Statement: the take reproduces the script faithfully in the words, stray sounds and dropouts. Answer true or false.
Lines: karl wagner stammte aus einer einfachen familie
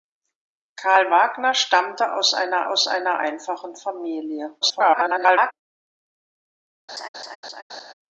false